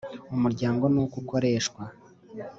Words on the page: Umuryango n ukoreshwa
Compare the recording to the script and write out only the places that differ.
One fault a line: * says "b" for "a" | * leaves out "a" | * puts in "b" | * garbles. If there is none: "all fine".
* puts in "uko"